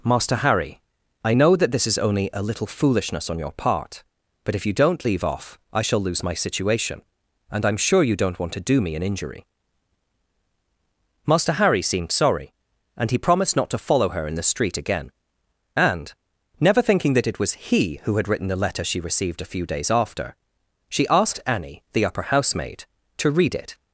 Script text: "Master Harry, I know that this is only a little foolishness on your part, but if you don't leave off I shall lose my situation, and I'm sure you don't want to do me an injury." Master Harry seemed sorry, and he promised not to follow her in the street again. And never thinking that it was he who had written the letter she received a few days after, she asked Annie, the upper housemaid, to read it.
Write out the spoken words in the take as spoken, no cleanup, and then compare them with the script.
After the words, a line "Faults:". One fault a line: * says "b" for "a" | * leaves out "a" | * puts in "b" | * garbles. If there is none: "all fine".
"Master Harry, I know that this is only a little foolishness on your part, but if you don't leave off I shall lose my situation, and I'm sure you don't want to do me an injury." Master Harry seemed sorry, and he promised not to follow her in the street again. And never thinking that it was he who had written the letter she received a few days after, she asked Annie, the upper housemaid, to read it.
Faults:
all fine